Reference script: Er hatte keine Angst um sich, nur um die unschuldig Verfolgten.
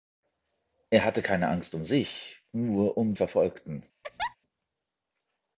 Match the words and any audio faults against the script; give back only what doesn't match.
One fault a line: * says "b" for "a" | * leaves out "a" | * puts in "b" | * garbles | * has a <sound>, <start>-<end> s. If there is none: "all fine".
* leaves out "die unschuldig"
* has a laugh, 4.0-4.4 s